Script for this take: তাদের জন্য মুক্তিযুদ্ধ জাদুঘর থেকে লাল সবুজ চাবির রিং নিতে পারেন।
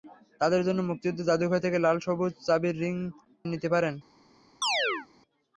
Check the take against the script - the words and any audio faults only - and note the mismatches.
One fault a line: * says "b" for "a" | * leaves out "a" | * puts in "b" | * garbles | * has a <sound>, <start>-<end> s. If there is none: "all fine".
* has a chirp, 4.6-5.1 s